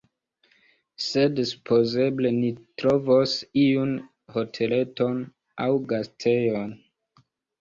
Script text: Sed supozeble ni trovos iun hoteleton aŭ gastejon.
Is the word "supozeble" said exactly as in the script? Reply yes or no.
yes